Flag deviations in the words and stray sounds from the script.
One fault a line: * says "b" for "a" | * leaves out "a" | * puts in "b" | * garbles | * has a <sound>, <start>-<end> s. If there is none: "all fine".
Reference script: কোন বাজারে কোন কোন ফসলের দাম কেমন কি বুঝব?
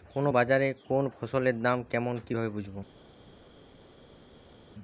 * leaves out "কোন"
* puts in "ভাবে"